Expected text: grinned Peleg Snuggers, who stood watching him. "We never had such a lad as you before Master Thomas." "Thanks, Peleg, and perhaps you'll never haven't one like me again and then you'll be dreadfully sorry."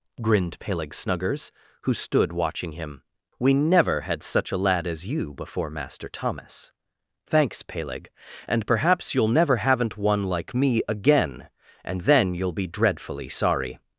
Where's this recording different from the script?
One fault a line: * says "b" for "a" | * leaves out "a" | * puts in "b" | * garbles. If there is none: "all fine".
all fine